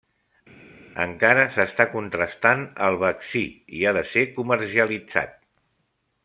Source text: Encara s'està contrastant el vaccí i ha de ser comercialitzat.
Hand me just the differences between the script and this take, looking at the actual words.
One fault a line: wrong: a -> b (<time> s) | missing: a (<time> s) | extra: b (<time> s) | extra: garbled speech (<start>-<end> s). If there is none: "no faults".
no faults